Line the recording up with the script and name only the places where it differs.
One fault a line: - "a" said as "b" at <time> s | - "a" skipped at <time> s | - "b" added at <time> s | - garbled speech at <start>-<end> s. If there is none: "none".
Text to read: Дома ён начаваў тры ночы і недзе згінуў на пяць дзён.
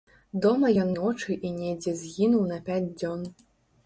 - "начаваў тры" skipped at 0.9 s